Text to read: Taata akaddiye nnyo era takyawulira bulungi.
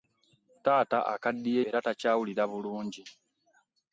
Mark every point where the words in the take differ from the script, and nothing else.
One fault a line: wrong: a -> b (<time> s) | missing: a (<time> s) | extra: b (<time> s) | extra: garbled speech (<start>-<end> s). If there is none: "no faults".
missing: nnyo (1.6 s)